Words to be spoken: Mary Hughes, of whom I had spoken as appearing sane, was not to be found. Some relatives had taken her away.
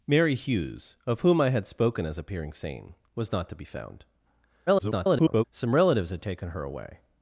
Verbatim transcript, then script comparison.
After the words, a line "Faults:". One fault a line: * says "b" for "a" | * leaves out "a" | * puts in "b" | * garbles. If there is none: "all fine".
Mary Hughes, of whom I had spoken as appearing sane, was not to be found. [garbled] Some relatives had taken her away.
Faults:
* garbles